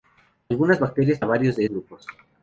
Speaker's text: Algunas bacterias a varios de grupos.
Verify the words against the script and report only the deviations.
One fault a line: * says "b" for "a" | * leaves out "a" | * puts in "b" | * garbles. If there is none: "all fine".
all fine